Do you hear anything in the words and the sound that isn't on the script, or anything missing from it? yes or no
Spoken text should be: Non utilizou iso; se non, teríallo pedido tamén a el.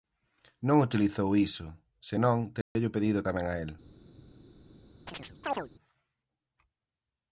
yes